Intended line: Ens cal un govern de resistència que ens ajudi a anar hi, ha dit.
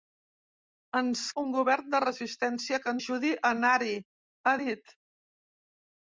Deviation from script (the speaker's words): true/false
true